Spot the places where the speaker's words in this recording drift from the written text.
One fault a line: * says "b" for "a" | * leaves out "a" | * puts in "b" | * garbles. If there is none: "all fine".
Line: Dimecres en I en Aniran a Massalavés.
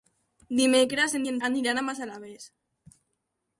all fine